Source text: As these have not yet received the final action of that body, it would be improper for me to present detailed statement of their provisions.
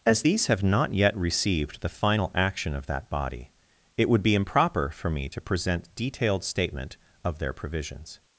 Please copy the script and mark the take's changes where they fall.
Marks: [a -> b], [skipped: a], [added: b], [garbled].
As these have not yet received the final action of that body, it would be improper for me to present detailed statement of their provisions.